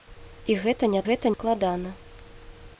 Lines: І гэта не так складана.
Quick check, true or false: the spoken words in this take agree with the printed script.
false